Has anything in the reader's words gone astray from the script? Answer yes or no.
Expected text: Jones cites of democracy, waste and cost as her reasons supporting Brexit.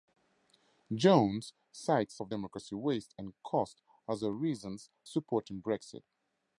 no